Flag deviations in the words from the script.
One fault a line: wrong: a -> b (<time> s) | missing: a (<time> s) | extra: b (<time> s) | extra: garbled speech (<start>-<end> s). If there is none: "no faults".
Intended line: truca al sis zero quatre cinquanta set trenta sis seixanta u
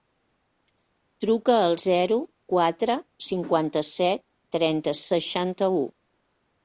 missing: sis (1.8 s)
missing: sis (5.0 s)